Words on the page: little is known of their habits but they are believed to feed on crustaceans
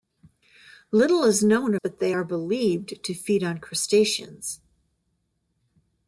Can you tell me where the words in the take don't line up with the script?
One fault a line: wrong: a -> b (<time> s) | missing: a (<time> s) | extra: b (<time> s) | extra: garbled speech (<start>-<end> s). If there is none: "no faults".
missing: of their habits (1.8 s)